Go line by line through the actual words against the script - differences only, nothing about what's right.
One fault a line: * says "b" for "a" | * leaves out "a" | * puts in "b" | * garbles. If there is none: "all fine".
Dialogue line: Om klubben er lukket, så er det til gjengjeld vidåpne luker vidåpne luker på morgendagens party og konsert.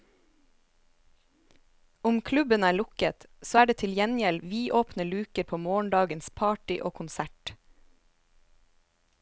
* leaves out "vidåpne luker"